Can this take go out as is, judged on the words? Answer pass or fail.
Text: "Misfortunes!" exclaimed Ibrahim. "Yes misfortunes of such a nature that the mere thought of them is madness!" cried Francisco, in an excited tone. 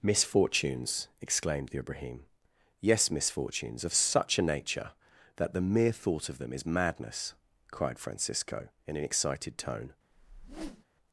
fail